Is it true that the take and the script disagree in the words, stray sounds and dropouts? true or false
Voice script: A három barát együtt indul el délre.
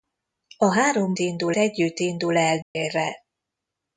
true